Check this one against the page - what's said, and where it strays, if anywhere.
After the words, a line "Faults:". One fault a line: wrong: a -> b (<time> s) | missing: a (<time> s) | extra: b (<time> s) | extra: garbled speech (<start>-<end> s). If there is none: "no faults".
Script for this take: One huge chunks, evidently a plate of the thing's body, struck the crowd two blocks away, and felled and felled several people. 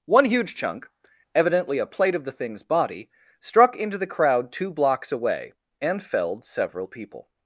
One huge chunk, evidently a plate of the thing's body, struck into the crowd two blocks away, and felled several people.
Faults:
wrong: chunks -> chunk (0.6 s)
extra: into (3.8 s)
missing: and felled (6.4 s)